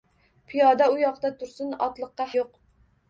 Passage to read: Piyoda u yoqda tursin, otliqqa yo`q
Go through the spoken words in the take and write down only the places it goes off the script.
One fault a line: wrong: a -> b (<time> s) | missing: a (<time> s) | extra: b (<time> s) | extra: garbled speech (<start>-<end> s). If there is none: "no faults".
no faults